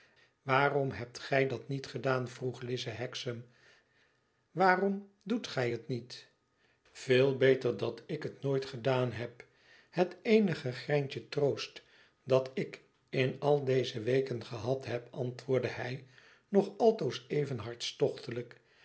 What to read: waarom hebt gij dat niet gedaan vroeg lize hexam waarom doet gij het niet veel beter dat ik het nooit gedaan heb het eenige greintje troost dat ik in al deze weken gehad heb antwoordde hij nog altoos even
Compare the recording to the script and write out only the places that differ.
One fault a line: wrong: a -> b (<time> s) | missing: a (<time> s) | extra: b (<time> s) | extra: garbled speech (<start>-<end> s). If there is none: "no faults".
no faults